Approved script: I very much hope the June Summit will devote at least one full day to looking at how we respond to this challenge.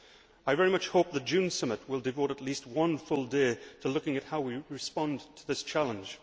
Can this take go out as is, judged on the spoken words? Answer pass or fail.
pass